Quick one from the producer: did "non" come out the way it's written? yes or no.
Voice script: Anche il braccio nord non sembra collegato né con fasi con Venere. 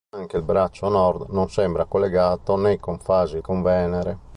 yes